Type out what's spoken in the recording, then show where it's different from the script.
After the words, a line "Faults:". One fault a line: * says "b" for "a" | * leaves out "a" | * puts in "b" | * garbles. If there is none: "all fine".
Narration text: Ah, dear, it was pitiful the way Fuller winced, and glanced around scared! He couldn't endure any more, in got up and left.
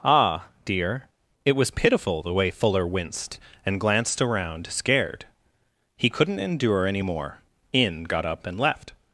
Ah, dear, it was pitiful the way Fuller winced, and glanced around scared! He couldn't endure any more, in got up and left.
Faults:
all fine